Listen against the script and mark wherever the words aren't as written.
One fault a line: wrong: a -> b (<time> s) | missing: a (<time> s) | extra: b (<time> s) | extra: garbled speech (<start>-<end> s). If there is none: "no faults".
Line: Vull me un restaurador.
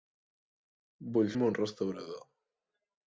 no faults